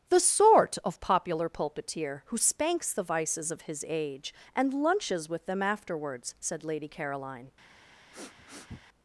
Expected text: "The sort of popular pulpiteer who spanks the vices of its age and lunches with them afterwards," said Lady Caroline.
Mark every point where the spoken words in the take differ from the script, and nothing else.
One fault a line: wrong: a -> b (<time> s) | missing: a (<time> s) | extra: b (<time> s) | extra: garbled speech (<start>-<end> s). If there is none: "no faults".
wrong: its -> his (3.6 s)